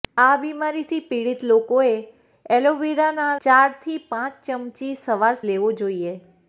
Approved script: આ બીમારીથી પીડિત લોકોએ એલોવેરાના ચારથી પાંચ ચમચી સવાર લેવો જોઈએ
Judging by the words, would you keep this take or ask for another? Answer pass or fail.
pass